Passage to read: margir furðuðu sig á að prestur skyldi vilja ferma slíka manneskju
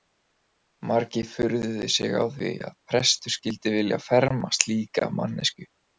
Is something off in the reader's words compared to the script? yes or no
yes